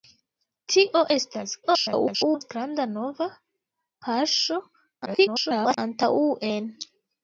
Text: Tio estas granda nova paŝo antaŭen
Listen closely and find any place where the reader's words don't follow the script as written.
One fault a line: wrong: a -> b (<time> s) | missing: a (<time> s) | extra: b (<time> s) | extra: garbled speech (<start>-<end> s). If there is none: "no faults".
extra: garbled speech (1.6-2.5 s)
extra: garbled speech (5.1-5.8 s)